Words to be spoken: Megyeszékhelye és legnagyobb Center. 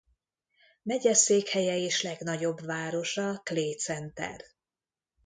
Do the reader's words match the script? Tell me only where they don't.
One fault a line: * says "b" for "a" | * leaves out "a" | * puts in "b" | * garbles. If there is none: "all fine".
* puts in "városa Clay"